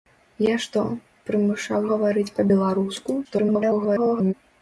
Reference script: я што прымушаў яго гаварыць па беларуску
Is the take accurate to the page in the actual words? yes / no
no